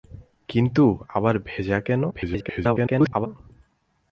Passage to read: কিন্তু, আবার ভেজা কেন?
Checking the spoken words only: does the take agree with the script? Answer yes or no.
no